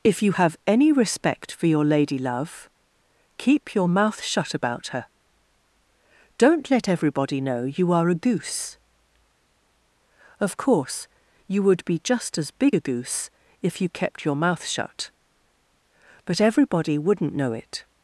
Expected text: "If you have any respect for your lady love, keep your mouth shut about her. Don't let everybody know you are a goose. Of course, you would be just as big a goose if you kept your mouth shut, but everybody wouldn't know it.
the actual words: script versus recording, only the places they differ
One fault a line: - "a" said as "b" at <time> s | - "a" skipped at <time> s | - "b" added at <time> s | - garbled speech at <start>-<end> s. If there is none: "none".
none